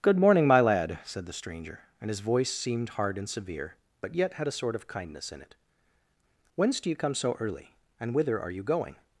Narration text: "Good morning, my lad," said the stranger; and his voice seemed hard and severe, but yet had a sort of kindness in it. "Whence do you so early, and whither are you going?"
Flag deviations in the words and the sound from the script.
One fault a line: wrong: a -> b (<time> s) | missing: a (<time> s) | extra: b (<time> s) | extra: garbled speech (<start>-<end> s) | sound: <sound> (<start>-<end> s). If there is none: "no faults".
extra: come (7.0 s)